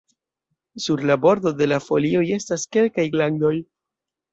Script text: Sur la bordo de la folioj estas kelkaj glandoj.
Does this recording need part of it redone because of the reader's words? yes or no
no